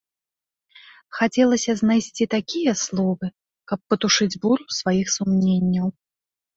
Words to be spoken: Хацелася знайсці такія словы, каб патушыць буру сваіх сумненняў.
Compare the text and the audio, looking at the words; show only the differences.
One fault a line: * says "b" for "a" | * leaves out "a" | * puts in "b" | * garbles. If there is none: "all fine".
all fine